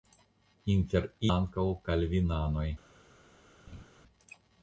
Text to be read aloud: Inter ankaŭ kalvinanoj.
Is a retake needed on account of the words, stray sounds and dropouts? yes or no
yes